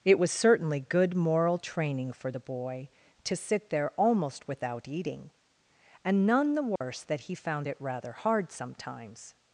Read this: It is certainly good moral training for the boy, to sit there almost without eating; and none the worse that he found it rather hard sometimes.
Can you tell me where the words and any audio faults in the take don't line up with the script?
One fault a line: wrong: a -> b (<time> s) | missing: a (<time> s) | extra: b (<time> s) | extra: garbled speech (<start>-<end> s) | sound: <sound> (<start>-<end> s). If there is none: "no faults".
wrong: is -> was (0.2 s)
sound: dropout (6.8-6.8 s)